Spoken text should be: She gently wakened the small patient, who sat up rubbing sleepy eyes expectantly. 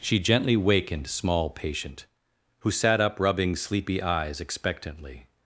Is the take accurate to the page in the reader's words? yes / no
no